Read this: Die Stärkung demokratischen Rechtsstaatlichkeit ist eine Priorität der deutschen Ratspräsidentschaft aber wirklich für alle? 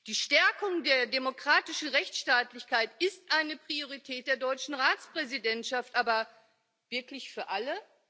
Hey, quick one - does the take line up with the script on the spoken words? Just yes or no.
no